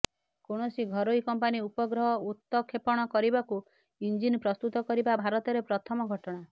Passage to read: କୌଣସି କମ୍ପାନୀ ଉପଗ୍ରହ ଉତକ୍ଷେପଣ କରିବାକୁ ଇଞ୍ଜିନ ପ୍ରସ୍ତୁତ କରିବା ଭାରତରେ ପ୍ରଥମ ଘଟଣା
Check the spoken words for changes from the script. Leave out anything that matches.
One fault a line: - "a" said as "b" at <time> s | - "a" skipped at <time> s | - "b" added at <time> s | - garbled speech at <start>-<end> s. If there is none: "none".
- "ଘରୋଇ" added at 0.9 s